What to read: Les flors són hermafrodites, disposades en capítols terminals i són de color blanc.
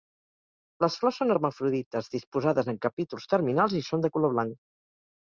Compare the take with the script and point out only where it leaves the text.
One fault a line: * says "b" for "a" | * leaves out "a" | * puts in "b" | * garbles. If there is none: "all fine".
all fine